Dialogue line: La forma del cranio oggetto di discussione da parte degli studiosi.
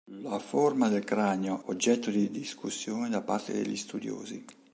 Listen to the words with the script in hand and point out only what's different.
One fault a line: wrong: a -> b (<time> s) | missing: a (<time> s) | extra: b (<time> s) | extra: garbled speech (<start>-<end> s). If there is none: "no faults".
no faults